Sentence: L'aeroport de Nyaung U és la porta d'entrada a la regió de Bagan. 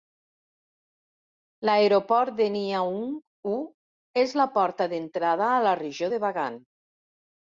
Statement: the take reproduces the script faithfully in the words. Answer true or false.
true